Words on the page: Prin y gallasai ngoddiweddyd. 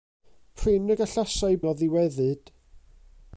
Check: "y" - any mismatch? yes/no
no